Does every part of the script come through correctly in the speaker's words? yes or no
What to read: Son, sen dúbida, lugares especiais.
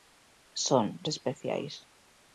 no